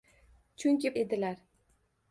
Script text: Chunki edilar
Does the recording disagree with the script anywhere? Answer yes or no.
no